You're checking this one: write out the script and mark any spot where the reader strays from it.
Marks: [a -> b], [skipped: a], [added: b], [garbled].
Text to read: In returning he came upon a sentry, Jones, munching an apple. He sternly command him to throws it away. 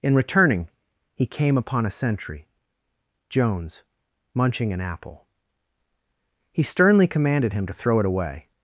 In returning he came upon a sentry, Jones, munching an apple. He sternly [command -> commanded] him to [throws -> throw] it away.